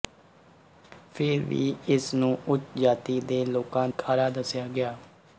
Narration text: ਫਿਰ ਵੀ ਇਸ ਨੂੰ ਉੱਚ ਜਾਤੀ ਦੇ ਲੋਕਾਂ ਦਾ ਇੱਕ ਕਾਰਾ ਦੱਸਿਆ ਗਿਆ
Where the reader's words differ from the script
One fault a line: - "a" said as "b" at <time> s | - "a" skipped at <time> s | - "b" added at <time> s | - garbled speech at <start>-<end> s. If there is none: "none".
- "ਦਾ ਇੱਕ" skipped at 3.9 s